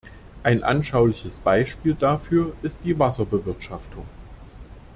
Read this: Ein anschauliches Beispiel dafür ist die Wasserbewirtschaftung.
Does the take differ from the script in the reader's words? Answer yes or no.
no